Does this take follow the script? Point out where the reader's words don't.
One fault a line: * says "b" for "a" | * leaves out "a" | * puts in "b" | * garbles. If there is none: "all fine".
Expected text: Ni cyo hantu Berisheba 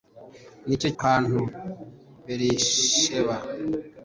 all fine